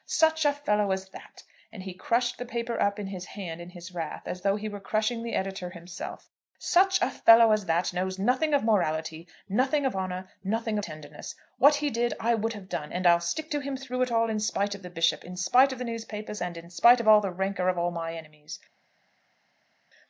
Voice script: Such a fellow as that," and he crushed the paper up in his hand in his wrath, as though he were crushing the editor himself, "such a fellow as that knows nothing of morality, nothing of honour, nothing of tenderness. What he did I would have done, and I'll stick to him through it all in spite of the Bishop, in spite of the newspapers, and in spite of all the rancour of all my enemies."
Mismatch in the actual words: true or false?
true